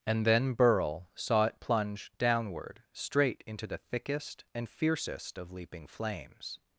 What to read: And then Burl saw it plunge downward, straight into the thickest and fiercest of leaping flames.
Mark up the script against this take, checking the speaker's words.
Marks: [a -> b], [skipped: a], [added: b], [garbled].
And then Burl saw it plunge downward, straight into the thickest and fiercest of leaping flames.